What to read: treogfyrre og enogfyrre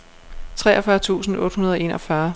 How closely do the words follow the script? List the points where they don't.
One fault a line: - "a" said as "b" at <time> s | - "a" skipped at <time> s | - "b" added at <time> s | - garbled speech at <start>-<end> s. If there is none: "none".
- "tusind otte hundrede" added at 1.0 s